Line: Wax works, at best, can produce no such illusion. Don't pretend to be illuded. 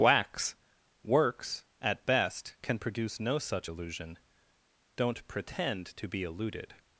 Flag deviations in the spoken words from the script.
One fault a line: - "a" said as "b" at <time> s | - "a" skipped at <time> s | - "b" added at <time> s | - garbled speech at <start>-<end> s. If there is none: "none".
none